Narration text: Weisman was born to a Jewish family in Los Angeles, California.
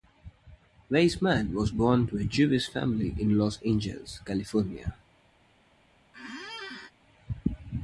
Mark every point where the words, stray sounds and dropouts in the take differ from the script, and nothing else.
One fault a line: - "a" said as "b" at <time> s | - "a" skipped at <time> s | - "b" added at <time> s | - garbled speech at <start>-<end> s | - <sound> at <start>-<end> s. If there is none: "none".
- squeak at 6.1-6.9 s